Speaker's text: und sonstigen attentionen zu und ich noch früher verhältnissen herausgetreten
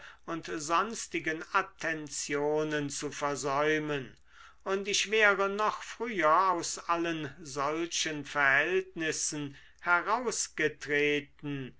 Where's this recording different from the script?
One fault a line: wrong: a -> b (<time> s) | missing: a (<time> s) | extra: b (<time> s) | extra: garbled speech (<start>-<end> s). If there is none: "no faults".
extra: versäumen (3.1 s)
extra: wäre (5.1 s)
extra: aus allen solchen (6.5 s)